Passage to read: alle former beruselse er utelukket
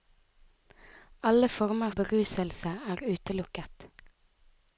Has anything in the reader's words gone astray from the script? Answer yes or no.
no